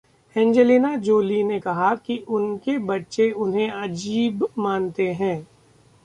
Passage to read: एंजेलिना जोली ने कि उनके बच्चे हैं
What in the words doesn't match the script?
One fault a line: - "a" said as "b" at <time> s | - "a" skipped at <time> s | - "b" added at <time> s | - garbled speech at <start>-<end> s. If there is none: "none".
- "कहा" added at 1.6 s
- "उन्हें अजीब मानते" added at 3.4 s